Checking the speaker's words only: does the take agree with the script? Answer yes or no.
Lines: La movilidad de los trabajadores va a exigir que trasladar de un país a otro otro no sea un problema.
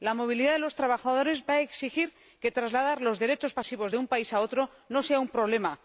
no